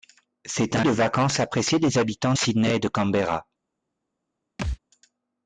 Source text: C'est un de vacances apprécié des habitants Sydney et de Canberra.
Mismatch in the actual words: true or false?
false